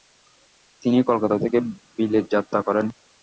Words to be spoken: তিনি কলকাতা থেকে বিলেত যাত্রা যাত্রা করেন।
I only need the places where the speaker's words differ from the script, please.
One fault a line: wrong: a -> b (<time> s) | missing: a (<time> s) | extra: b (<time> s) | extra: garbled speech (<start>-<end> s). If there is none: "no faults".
missing: যাত্রা (2.6 s)